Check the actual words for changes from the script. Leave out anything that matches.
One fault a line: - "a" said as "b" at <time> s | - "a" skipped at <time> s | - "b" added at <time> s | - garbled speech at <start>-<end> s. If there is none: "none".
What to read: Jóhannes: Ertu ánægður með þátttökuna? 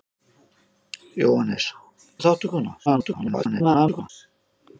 - "Ertu ánægður" skipped at 1.7 s
- garbled speech at 2.9-4.1 s